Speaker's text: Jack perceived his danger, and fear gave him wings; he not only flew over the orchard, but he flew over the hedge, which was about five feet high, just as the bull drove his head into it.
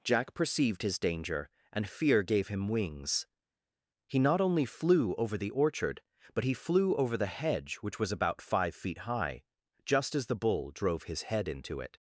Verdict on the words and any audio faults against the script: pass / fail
pass